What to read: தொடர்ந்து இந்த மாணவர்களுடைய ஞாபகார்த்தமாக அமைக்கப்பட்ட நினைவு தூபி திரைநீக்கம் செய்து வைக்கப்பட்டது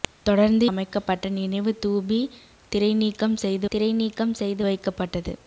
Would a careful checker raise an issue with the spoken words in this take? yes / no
yes